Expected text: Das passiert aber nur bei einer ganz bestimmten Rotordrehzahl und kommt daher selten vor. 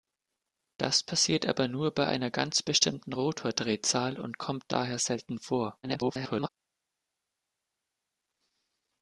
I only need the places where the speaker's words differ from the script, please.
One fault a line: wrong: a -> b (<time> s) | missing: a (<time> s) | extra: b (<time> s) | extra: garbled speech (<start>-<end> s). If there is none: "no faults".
extra: garbled speech (5.8-6.5 s)